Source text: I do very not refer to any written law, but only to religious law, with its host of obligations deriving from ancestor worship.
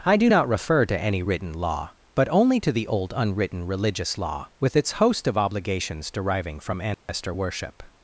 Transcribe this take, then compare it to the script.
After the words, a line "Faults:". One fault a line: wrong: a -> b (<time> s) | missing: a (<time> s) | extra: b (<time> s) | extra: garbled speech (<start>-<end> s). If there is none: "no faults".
I do not refer to any written law, but only to the old unwritten religious law, with its host of obligations deriving from ancestor worship.
Faults:
missing: very (0.3 s)
extra: the old unwritten (2.7 s)